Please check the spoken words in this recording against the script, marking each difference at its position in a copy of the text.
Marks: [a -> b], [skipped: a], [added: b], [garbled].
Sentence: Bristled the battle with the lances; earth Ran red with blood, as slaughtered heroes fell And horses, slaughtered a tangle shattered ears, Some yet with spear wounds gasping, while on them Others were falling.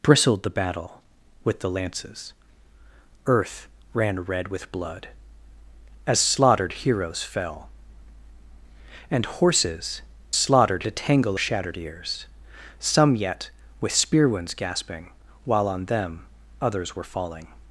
Bristled the battle with the lances; earth Ran red with blood, as slaughtered heroes fell And horses, slaughtered a tangle shattered ears, Some yet with spear wounds gasping, while on them Others were falling.